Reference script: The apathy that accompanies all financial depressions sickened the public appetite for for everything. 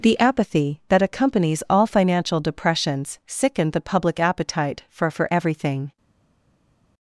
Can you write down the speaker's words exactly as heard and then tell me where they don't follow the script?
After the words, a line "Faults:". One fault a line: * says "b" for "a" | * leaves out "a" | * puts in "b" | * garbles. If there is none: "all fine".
The apathy that accompanies all financial depressions sickened the public appetite for for everything.
Faults:
all fine